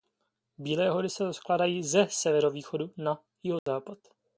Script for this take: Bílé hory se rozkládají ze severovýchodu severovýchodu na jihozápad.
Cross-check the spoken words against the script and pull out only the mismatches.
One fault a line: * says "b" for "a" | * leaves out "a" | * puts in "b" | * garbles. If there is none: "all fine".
* leaves out "severovýchodu"